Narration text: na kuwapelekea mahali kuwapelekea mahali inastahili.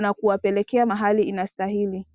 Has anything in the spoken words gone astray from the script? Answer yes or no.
yes